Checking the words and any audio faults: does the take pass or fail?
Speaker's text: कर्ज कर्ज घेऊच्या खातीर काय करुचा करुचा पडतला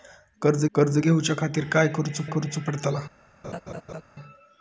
fail